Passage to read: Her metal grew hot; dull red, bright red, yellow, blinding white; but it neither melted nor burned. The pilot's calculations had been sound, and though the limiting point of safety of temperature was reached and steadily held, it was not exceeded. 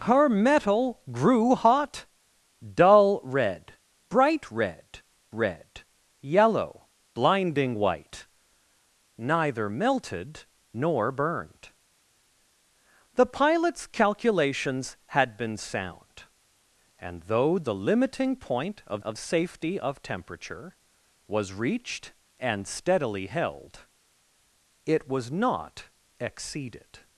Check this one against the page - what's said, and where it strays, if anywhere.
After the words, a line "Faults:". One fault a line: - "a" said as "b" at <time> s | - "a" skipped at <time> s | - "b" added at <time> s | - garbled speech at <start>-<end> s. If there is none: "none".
Her metal grew hot; dull red, bright red red, yellow, blinding white; neither melted nor burned. The pilot's calculations had been sound, and though the limiting point of of safety of temperature was reached and steadily held, it was not exceeded.
Faults:
- "red" added at 5.3 s
- "but it" skipped at 8.3 s
- "of" added at 19.0 s